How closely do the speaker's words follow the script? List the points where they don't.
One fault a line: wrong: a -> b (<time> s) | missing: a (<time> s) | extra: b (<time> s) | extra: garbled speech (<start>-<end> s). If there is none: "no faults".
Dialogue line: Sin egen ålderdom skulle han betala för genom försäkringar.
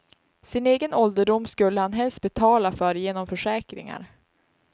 extra: helst (1.9 s)